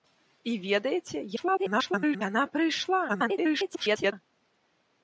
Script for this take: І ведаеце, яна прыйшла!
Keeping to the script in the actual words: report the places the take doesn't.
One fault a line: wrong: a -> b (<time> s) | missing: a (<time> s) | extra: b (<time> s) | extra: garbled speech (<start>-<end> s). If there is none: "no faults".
extra: garbled speech (1.4-2.2 s)
extra: garbled speech (3.1-4.1 s)